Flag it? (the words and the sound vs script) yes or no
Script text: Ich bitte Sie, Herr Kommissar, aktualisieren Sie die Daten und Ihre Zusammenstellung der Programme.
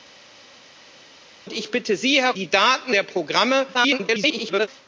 yes